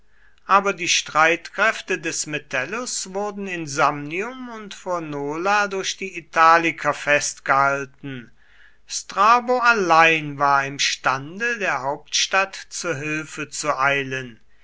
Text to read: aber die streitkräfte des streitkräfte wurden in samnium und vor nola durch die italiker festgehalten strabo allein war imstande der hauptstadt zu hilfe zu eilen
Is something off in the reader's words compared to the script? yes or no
yes